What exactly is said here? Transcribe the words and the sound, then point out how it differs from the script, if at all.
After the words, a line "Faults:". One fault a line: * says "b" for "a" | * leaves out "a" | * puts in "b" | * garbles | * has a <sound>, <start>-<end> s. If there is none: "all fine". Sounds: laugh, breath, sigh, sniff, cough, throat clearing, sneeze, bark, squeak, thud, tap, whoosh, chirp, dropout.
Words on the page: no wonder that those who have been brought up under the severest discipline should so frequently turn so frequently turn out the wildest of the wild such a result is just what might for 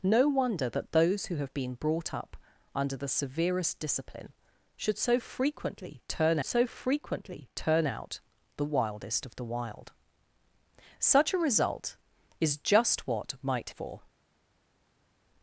no wonder that those who have been brought up under the severest discipline should so frequently turn so frequently turn out the wildest of the wild such a result is just what might for
Faults:
all fine